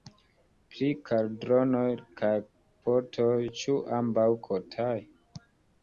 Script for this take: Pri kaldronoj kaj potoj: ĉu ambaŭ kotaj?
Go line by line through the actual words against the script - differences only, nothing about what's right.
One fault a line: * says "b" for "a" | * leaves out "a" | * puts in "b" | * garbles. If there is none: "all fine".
all fine